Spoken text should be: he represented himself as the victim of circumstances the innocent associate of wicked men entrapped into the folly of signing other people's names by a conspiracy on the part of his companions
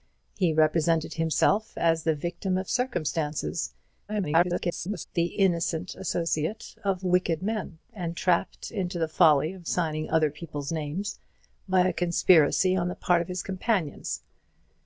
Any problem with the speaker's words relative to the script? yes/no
yes